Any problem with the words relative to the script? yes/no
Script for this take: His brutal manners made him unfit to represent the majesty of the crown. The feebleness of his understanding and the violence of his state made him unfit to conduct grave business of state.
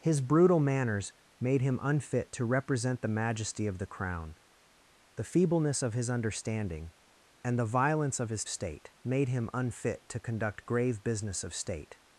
no